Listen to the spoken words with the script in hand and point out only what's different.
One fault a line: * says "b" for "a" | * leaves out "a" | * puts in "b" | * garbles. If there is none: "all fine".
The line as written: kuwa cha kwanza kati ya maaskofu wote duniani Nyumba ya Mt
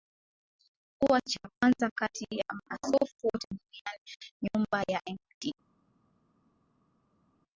all fine